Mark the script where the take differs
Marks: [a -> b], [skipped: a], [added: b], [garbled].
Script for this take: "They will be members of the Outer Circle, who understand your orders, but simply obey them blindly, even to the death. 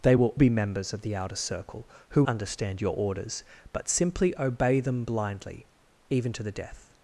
"They will be members of the Outer Circle, who understand your orders, but simply obey them blindly, even to the death.